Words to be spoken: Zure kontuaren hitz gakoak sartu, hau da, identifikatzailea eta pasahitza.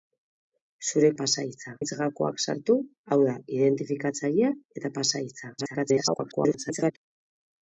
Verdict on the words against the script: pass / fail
fail